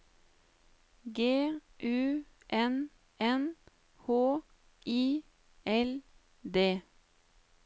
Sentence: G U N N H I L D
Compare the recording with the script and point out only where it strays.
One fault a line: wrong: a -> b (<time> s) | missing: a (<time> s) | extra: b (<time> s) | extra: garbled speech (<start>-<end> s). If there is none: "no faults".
no faults